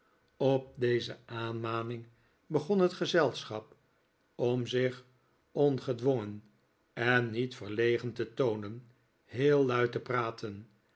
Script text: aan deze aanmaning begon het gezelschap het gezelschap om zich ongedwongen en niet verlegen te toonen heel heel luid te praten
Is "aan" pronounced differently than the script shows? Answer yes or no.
yes